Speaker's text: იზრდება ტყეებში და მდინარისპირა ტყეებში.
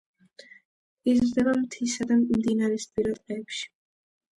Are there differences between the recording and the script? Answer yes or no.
yes